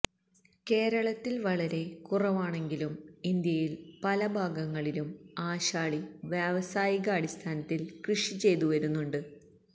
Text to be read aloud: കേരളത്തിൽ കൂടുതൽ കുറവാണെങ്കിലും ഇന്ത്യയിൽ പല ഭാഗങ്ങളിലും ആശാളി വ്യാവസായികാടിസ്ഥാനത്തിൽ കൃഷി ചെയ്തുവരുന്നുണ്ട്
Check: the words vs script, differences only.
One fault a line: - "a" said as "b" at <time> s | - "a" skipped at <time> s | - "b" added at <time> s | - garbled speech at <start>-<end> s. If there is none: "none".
- "കൂടുതൽ" said as "വളരെ" at 1.4 s